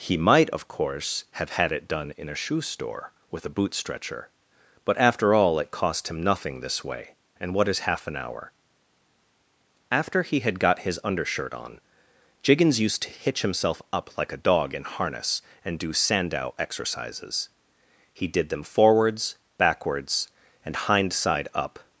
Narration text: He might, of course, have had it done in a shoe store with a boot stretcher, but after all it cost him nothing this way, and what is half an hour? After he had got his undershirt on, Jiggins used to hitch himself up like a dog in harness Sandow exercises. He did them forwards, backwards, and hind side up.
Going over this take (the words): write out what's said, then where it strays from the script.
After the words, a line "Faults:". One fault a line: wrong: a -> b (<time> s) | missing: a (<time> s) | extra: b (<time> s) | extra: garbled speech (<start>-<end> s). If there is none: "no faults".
He might, of course, have had it done in a shoe store with a boot stretcher, but after all it cost him nothing this way, and what is half an hour? After he had got his undershirt on, Jiggins used to hitch himself up like a dog in harness and do Sandow exercises. He did them forwards, backwards, and hind side up.
Faults:
extra: and do (15.6 s)